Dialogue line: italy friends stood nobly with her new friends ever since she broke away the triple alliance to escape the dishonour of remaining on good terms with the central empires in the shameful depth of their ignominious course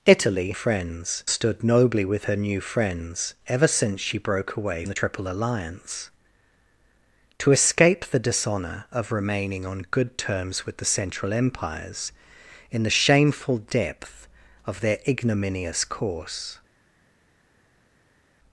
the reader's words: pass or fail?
pass